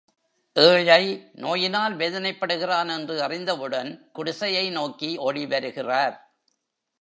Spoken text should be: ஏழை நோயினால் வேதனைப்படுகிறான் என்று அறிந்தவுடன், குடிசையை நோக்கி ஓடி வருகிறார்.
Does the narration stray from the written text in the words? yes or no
no